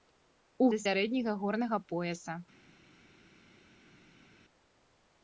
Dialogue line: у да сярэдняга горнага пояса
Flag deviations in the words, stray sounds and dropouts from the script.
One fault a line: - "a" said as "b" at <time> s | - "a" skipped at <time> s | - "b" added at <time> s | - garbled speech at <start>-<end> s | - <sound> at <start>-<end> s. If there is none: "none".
none